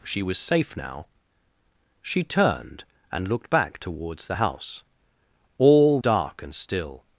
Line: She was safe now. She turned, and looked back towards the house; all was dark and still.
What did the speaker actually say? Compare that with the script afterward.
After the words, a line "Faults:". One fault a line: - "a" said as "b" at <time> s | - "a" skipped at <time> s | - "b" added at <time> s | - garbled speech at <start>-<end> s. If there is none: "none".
She was safe now. She turned, and looked back towards the house; all dark and still.
Faults:
- "was" skipped at 6.0 s